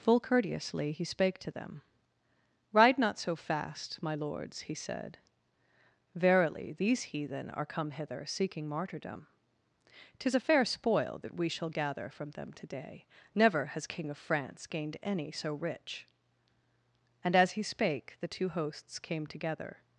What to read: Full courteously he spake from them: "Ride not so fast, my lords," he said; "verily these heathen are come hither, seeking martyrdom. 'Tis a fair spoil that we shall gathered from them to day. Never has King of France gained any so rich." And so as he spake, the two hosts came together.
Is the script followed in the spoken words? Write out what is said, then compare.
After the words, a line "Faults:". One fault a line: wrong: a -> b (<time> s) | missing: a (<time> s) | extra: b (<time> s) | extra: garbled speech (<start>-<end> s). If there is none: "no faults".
Full courteously he spake to them: "Ride not so fast, my lords," he said; "verily these heathen are come hither, seeking martyrdom. 'Tis a fair spoil that we shall gather from them to day. Never has King of France gained any so rich." And as he spake, the two hosts came together.
Faults:
wrong: from -> to (1.4 s)
wrong: gathered -> gather (11.7 s)
missing: so (17.4 s)